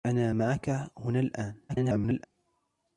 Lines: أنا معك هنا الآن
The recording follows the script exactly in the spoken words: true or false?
false